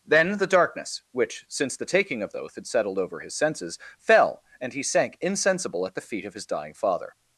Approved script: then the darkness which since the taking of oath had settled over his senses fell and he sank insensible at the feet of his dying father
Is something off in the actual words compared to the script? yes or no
no